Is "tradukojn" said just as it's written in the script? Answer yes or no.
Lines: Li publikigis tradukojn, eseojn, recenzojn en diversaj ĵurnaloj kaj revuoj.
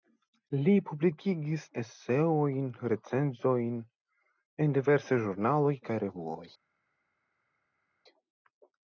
no